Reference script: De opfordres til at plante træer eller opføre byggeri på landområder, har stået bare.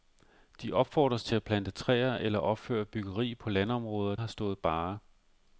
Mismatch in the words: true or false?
false